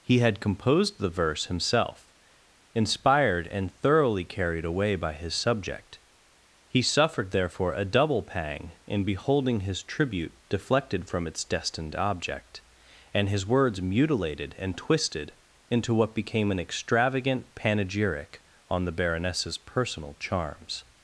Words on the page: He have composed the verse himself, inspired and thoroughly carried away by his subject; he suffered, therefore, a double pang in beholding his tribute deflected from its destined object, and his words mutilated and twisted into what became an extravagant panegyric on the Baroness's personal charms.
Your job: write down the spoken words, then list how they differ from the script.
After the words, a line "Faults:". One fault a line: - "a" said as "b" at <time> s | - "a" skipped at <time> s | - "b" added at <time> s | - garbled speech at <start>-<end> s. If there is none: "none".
He had composed the verse himself, inspired and thoroughly carried away by his subject; he suffered, therefore, a double pang in beholding his tribute deflected from its destined object, and his words mutilated and twisted into what became an extravagant panegyric on the Baroness's personal charms.
Faults:
- "have" said as "had" at 0.2 s